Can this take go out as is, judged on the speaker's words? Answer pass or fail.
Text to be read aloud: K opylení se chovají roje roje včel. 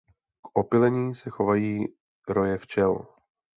fail